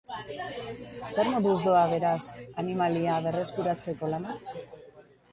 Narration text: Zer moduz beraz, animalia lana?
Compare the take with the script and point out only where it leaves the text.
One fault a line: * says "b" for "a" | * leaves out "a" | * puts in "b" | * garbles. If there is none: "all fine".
* puts in "doa"
* puts in "berreskuratzeko"